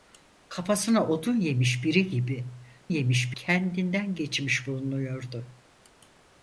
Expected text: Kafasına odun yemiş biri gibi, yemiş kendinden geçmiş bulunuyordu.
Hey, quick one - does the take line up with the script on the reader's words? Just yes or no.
yes